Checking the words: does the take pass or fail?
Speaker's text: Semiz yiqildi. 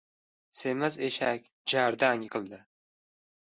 fail